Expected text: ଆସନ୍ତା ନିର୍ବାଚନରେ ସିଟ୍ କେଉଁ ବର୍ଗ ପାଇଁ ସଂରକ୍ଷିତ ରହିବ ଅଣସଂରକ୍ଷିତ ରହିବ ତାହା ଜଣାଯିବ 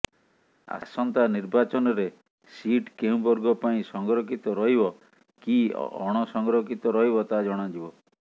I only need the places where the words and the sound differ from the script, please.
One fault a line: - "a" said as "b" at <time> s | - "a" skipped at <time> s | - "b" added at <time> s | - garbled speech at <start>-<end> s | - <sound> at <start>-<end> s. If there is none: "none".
- "କି" added at 5.4 s